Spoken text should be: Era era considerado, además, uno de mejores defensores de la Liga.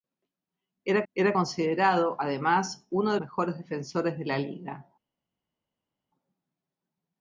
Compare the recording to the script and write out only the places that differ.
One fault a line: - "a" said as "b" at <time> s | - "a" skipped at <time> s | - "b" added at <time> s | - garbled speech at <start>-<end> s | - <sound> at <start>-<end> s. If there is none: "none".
none